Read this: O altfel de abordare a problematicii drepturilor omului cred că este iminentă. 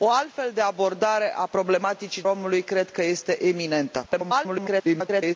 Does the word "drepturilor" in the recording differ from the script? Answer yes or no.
yes